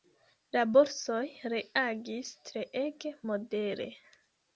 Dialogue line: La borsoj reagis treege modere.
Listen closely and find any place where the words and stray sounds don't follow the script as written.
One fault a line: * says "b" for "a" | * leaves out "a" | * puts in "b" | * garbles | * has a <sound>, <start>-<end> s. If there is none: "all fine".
all fine